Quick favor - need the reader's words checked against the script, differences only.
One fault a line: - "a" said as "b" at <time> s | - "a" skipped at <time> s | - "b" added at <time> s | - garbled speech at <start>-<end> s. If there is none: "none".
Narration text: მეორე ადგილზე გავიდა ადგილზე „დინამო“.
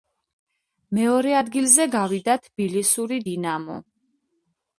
- "ადგილზე" said as "თბილისური" at 2.5 s